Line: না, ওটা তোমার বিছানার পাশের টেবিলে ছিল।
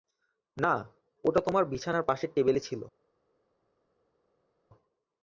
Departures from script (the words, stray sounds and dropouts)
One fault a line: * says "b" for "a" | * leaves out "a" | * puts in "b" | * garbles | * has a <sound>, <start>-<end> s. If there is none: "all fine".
all fine